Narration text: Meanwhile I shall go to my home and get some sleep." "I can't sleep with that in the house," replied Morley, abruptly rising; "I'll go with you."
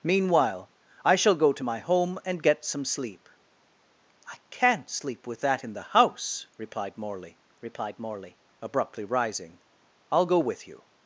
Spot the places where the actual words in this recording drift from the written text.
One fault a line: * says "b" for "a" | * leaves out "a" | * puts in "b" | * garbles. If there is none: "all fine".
* puts in "replied Morley"